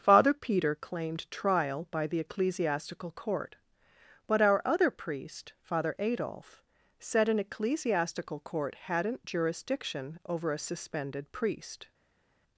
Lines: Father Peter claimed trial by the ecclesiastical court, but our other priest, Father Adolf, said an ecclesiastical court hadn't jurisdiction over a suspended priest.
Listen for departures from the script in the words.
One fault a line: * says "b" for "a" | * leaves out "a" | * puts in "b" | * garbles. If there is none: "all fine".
all fine